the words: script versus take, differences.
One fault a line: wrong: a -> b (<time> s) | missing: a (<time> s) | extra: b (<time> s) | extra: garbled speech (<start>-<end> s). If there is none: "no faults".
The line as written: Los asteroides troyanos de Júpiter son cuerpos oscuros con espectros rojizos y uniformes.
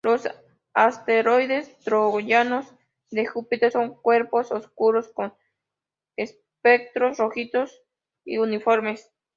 no faults